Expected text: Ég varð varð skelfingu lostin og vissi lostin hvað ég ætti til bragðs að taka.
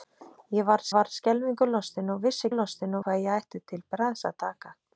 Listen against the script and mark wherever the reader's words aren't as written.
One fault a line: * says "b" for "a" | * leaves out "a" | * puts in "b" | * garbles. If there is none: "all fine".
all fine